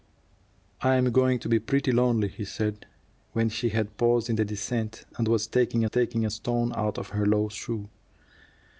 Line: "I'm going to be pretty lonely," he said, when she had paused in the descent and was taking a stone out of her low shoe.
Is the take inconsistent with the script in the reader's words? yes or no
yes